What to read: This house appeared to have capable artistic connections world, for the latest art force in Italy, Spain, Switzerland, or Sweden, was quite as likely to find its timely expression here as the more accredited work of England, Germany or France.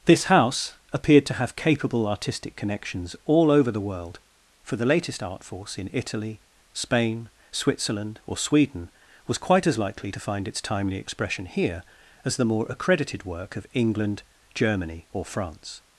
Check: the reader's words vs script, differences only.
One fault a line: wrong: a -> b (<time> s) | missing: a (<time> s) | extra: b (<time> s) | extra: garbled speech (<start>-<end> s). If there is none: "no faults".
extra: all over the (3.2 s)